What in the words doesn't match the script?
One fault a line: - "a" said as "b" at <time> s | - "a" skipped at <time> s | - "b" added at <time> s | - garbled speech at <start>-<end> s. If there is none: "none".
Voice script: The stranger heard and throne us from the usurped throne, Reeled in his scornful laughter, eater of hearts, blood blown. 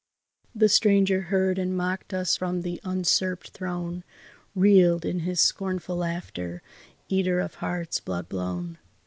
- "throne" said as "mocked" at 1.8 s